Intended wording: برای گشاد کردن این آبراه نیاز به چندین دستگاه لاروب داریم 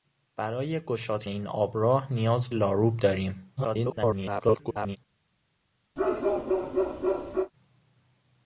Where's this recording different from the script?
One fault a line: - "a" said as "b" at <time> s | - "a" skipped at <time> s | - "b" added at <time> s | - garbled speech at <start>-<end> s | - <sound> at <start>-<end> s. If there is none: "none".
- "کردن" skipped at 1.2 s
- "به چندین دستگاه" skipped at 2.5 s
- garbled speech at 3.6-5.0 s
- bark at 6.0-7.5 s